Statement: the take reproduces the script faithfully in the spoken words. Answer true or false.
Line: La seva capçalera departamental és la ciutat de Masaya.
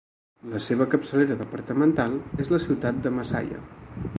true